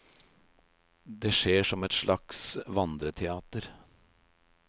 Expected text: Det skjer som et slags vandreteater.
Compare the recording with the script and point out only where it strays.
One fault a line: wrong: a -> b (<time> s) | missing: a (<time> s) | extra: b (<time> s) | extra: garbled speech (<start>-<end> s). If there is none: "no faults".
no faults